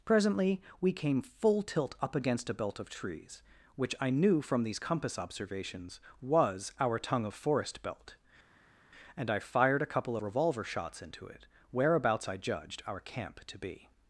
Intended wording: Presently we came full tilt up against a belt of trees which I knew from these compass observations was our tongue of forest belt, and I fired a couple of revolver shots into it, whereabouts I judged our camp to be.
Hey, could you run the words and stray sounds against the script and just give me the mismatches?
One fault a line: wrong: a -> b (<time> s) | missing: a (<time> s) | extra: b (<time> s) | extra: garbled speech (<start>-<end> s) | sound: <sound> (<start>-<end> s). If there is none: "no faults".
missing: of (10.2 s)